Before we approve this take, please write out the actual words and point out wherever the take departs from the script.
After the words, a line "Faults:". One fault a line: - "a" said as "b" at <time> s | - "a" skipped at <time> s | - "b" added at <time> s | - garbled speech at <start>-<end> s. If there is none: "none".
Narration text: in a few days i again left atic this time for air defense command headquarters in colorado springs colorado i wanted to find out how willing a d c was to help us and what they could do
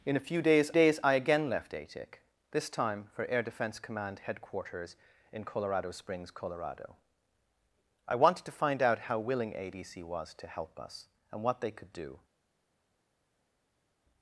in a few days days i again left atic this time for air defense command headquarters in colorado springs colorado i wanted to find out how willing a d c was to help us and what they could do
Faults:
- "days" added at 0.7 s